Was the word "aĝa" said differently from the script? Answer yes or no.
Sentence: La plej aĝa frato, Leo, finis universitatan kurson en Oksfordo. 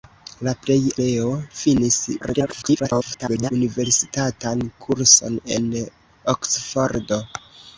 yes